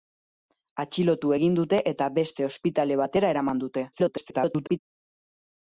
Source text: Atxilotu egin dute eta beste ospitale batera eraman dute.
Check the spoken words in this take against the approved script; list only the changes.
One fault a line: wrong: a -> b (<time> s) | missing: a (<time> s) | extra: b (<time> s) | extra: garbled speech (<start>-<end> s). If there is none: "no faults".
extra: garbled speech (3.9-4.8 s)